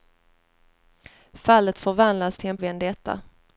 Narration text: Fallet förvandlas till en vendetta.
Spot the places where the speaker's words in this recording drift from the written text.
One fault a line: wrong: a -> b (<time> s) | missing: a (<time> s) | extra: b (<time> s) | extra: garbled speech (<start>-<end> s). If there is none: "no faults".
no faults